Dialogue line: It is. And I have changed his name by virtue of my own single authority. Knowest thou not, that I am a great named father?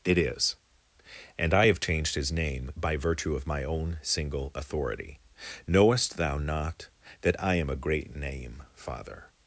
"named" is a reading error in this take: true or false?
true